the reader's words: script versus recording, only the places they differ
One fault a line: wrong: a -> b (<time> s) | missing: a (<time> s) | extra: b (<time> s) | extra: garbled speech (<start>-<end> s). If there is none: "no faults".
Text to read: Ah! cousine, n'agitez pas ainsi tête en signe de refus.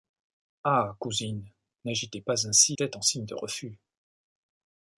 no faults